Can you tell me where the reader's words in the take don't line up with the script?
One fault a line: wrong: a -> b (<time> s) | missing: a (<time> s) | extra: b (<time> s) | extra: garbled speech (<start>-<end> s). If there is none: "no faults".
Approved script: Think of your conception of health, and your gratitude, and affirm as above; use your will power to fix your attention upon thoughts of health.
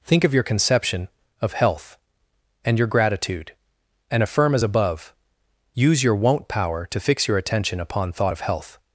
wrong: will -> won't (6.2 s)
wrong: thoughts -> thought (8.1 s)